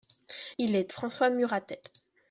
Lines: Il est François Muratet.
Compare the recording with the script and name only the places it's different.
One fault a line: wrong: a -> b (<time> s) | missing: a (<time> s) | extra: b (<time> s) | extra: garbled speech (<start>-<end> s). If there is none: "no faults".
no faults